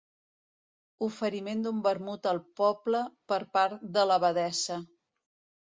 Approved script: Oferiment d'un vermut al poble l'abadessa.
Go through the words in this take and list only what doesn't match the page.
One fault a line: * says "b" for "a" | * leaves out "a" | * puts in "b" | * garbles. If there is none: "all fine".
* puts in "per part de"